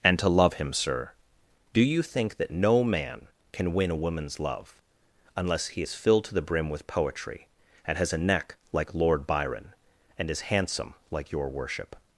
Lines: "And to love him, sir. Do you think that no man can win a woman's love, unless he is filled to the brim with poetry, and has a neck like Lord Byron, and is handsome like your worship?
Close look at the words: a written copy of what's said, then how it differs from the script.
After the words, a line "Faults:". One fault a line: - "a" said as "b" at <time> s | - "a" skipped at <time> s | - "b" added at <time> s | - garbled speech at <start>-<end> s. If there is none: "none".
"And to love him, sir. Do you think that no man can win a woman's love, unless he is filled to the brim with poetry, and has a neck like Lord Byron, and is handsome like your worship?
Faults:
none